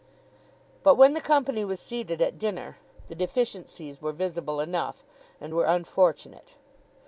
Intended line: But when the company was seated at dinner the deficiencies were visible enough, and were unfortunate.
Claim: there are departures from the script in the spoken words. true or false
false